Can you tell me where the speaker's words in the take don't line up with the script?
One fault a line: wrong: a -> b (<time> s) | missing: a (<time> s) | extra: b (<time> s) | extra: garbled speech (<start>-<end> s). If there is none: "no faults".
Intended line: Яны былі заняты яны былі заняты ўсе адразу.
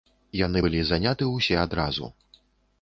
missing: яны былі заняты (1.3 s)